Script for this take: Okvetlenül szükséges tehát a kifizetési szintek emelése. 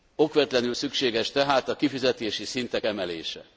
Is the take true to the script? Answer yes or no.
yes